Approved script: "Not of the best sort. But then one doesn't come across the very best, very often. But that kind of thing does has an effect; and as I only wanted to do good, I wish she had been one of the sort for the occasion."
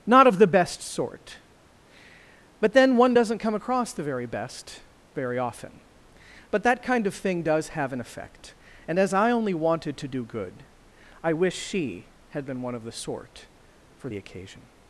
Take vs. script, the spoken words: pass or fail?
fail